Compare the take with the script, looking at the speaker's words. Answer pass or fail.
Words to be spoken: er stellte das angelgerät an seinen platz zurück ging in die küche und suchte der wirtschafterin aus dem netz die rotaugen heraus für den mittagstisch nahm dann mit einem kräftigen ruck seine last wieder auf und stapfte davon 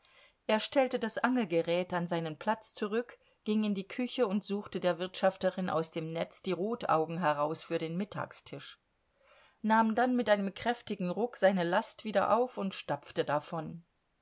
pass